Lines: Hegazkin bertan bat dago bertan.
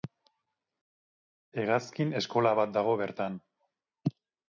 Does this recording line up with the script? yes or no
no